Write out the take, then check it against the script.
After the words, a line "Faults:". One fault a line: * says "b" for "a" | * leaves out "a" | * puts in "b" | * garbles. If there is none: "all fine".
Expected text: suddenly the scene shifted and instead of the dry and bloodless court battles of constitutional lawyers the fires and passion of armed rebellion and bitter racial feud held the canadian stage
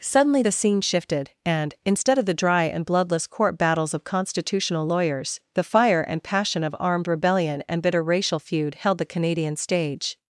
suddenly the scene shifted and instead of the dry and bloodless court battles of constitutional lawyers the fire and passion of armed rebellion and bitter racial feud held the canadian stage
Faults:
* says "fire" for "fires"